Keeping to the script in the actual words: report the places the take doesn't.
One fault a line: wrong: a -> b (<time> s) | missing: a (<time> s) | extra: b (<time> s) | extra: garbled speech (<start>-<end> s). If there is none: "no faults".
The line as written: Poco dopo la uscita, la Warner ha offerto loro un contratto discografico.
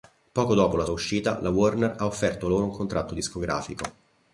no faults